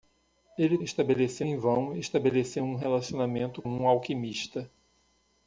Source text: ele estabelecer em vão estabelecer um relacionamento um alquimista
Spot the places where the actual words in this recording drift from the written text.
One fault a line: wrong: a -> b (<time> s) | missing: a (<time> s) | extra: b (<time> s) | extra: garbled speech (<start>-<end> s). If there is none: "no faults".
no faults